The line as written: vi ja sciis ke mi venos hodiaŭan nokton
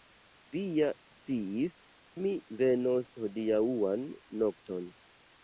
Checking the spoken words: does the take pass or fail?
fail